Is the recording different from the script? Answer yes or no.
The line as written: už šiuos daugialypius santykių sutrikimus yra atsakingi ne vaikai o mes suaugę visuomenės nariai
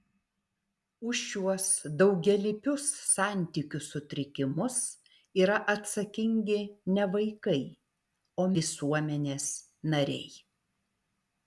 yes